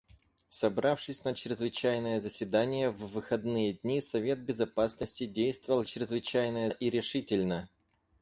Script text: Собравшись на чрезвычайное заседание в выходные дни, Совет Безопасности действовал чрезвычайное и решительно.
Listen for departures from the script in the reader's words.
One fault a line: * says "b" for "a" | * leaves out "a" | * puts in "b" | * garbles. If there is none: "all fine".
all fine